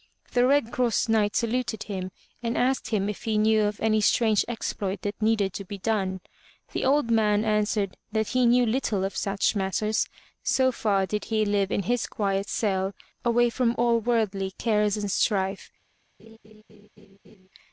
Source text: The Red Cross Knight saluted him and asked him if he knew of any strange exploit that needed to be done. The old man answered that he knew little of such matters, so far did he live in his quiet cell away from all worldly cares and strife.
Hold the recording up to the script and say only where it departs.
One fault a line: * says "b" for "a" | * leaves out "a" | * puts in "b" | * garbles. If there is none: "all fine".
all fine